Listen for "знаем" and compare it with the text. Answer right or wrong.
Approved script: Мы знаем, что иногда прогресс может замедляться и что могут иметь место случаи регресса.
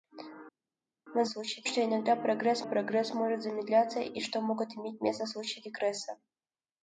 wrong